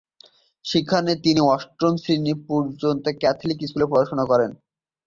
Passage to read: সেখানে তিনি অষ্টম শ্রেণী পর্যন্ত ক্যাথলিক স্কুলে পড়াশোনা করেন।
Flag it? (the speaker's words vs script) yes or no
no